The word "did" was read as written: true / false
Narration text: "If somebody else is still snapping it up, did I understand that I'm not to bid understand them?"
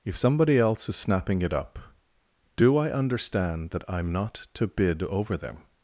false